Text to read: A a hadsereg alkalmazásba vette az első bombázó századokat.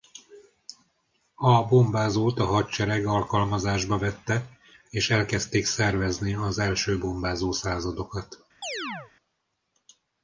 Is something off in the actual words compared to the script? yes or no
yes